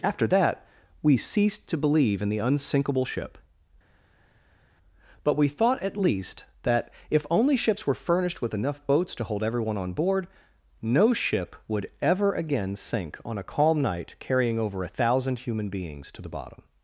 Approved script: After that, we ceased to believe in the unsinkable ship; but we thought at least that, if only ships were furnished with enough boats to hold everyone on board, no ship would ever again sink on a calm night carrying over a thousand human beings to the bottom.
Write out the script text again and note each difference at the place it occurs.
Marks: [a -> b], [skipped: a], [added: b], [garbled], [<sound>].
After that, we ceased to believe in the unsinkable ship; but we thought at least that, if only ships were furnished with enough boats to hold everyone on board, no ship would ever again sink on a calm night carrying over a thousand human beings to the bottom.